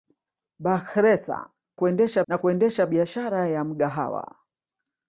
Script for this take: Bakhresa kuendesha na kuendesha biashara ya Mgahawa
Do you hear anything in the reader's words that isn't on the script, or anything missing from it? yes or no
no